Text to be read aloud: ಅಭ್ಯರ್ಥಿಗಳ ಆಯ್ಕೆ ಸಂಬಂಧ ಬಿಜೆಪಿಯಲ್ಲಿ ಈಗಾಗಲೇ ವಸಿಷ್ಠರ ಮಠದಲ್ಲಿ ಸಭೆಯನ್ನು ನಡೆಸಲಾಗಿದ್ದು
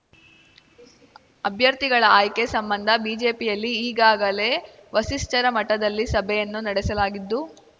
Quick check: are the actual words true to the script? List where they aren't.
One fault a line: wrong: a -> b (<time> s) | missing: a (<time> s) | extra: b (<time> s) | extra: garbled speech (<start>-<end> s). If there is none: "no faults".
no faults